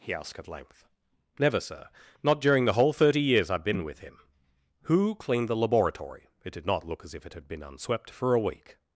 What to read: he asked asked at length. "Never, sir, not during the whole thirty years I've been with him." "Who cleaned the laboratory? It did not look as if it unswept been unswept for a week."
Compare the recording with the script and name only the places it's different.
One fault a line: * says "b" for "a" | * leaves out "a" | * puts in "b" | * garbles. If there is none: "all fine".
* leaves out "asked"
* says "had" for "unswept"